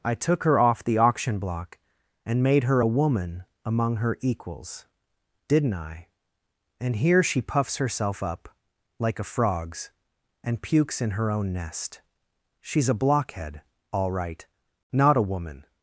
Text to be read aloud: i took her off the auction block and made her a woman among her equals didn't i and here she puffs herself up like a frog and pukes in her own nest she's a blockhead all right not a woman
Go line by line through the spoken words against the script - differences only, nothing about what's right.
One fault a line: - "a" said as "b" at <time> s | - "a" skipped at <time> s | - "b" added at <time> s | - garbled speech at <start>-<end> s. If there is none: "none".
- "frog" said as "frogs" at 9.2 s